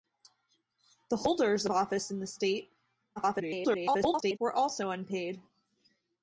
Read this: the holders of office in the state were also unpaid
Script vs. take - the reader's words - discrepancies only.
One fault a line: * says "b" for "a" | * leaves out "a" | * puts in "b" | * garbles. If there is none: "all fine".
* garbles